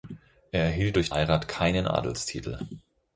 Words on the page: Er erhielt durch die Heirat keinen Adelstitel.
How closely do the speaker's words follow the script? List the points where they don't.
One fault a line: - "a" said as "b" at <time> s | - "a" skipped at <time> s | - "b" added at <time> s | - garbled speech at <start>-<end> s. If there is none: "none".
- "die" skipped at 1.1 s